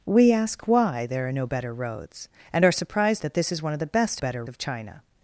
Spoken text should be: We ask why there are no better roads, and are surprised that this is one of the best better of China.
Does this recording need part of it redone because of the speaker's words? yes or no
no